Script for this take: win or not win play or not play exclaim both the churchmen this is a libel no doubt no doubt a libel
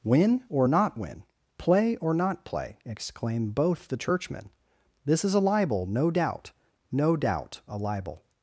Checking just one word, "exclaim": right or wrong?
right